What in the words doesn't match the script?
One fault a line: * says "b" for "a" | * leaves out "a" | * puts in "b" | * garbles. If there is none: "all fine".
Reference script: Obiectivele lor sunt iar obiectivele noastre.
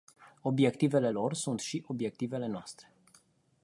* says "și" for "iar"